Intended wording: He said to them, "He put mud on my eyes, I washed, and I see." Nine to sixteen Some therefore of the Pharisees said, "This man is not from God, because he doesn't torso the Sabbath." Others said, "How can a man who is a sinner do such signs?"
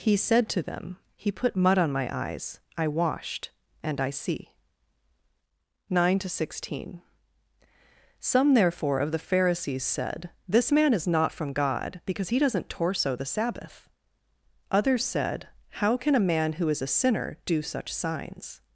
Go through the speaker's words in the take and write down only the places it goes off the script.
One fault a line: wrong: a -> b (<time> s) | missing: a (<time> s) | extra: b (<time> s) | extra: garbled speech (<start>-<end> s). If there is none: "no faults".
no faults